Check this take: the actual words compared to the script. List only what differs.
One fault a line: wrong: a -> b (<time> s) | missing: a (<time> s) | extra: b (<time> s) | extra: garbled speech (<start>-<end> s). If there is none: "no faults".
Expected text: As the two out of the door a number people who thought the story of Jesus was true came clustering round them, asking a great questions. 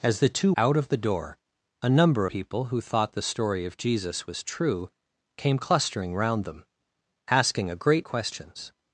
no faults